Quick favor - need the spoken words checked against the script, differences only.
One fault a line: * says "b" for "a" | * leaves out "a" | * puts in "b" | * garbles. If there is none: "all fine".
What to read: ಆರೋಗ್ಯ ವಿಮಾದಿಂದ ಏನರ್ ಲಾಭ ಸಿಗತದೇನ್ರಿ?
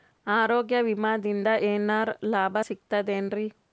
all fine